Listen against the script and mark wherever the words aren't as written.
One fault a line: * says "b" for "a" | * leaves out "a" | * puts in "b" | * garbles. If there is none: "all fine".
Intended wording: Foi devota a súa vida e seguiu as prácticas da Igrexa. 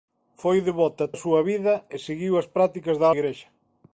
all fine